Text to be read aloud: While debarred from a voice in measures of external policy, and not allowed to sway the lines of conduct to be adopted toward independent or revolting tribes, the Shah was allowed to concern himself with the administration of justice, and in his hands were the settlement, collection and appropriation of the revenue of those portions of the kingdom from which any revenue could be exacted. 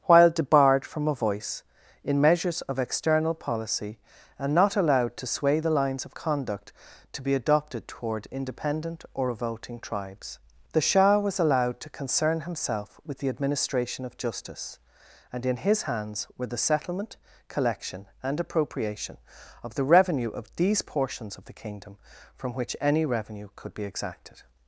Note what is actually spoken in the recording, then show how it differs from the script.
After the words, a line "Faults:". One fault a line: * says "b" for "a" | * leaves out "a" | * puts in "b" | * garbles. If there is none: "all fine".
While debarred from a voice in measures of external policy, and not allowed to sway the lines of conduct to be adopted toward independent or revolting tribes, the Shah was allowed to concern himself with the administration of justice, and in his hands were the settlement, collection and appropriation of the revenue of these portions of the kingdom from which any revenue could be exacted.
Faults:
* says "these" for "those"